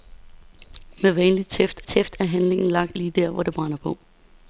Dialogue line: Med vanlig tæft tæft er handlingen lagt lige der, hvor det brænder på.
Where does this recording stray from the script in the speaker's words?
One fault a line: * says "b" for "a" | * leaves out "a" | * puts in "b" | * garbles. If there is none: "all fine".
all fine